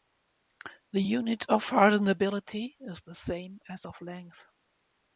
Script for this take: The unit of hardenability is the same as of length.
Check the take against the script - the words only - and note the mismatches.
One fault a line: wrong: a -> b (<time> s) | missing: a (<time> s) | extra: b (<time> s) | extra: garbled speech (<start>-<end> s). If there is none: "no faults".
no faults